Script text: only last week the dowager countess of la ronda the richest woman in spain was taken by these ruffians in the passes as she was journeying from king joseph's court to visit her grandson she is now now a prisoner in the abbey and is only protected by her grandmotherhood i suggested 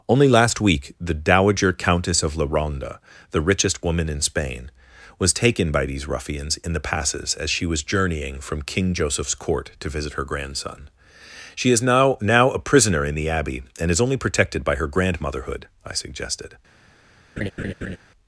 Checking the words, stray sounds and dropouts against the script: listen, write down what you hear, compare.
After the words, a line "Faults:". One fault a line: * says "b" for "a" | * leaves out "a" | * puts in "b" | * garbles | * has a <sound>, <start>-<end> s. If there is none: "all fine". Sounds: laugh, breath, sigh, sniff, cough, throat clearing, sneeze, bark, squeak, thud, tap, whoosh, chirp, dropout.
only last week the dowager countess of la ronda the richest woman in spain was taken by these ruffians in the passes as she was journeying from king joseph's court to visit her grandson she is now now a prisoner in the abbey and is only protected by her grandmotherhood i suggested
Faults:
* has a laugh, 17.4-18.0 s